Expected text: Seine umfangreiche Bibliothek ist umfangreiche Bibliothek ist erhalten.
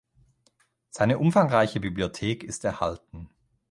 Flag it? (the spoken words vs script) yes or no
yes